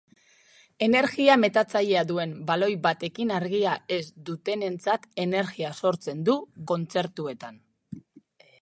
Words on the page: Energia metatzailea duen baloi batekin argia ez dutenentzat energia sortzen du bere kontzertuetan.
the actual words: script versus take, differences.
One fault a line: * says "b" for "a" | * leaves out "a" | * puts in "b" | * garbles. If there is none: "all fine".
* leaves out "bere"